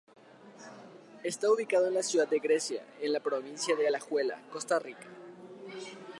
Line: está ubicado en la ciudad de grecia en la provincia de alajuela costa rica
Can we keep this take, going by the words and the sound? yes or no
yes